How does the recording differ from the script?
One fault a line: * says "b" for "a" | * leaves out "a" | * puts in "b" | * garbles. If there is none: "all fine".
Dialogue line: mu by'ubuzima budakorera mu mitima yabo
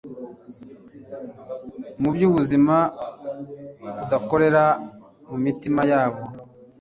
all fine